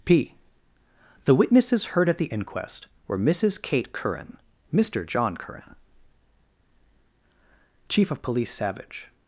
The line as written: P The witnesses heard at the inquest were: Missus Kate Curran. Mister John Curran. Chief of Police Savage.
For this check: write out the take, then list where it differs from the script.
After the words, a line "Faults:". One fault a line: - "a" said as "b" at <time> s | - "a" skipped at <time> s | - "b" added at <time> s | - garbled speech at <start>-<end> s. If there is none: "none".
P The witnesses heard at the inquest were: Missus Kate Curran. Mister John Curran. Chief of Police Savage.
Faults:
none